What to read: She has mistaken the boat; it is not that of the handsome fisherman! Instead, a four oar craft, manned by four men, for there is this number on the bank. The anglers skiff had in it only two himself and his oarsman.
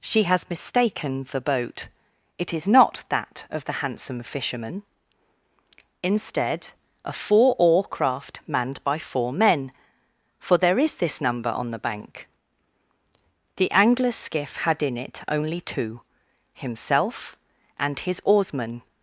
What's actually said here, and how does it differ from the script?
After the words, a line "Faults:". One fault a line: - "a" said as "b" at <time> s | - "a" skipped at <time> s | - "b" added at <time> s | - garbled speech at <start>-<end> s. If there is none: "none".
She has mistaken the boat; it is not that of the handsome fisherman! Instead, a four oar craft, manned by four men, for there is this number on the bank. The anglers skiff had in it only two himself and his oarsman.
Faults:
none